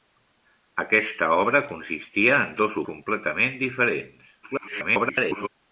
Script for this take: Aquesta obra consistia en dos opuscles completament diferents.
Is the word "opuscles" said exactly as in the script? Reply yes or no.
no